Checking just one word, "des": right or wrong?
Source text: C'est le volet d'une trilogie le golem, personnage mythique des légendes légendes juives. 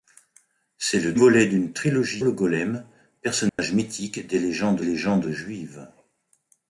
right